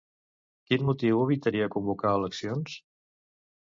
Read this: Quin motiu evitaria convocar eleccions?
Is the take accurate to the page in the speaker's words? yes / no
yes